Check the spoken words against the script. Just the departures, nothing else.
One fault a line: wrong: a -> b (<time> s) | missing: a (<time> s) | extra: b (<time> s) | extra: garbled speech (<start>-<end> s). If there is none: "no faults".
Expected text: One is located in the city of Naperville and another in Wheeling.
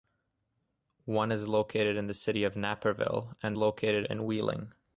wrong: another -> located (3.6 s)